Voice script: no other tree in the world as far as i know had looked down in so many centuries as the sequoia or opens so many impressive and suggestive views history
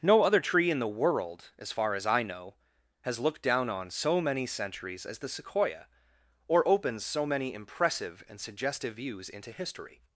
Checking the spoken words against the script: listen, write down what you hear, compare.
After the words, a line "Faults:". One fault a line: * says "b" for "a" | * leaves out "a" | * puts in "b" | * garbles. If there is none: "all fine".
no other tree in the world as far as i know has looked down on so many centuries as the sequoia or opens so many impressive and suggestive views into history
Faults:
* says "has" for "had"
* says "on" for "in"
* puts in "into"